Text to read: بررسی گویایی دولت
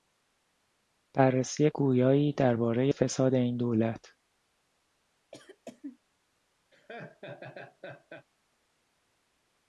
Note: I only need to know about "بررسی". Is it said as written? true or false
true